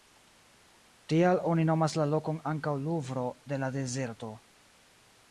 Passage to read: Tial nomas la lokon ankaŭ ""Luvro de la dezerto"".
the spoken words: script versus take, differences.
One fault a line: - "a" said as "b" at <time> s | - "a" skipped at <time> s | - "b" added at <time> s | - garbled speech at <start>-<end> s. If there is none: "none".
- "oni" added at 1.5 s